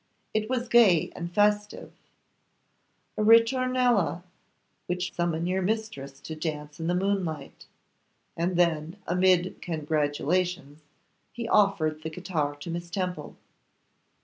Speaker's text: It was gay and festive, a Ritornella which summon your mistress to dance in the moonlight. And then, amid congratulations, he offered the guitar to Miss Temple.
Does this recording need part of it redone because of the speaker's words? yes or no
no